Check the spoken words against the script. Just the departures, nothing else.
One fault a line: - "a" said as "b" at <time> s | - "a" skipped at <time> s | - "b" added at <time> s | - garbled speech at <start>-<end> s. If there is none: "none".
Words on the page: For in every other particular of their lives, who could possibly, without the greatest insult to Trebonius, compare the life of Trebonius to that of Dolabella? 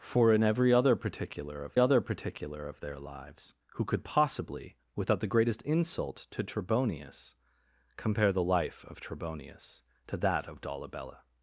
- "other particular of" added at 1.8 s